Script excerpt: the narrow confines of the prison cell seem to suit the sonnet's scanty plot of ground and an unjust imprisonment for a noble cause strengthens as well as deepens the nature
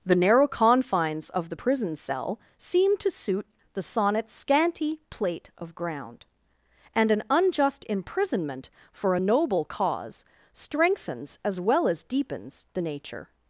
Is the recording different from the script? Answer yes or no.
yes